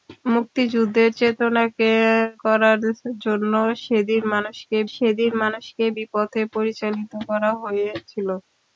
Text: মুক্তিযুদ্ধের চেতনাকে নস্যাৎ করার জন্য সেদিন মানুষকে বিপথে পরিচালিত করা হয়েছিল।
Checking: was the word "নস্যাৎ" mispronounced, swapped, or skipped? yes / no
yes